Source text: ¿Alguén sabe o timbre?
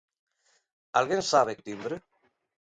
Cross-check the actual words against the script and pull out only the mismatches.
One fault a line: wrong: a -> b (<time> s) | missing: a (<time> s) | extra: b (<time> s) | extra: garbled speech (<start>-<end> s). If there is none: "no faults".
no faults